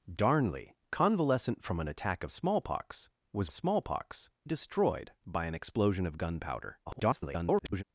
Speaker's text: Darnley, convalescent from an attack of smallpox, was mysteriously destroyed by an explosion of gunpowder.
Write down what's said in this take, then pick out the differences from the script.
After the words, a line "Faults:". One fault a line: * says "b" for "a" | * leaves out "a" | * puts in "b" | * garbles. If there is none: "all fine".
Darnley, convalescent from an attack of smallpox, was smallpox destroyed by an explosion of gunpowder. [garbled]
Faults:
* says "smallpox" for "mysteriously"
* garbles